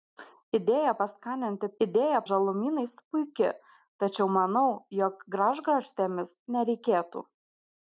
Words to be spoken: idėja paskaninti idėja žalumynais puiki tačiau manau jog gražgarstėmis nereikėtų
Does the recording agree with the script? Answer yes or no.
yes